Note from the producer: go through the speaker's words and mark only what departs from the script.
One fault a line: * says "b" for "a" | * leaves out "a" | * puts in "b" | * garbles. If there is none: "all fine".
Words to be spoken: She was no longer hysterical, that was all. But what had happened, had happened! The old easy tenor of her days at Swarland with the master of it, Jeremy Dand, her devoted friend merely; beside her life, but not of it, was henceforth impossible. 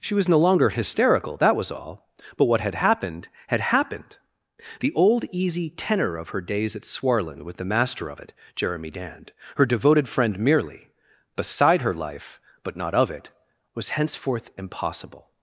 all fine